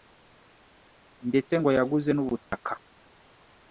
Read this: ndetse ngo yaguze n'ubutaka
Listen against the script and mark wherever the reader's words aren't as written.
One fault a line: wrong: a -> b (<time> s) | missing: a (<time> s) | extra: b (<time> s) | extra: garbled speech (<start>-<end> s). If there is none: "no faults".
no faults